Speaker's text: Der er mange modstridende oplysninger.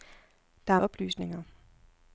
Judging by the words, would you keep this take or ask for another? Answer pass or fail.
fail